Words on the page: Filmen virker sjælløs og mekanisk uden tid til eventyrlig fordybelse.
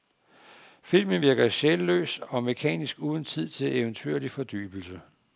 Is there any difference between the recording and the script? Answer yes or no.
no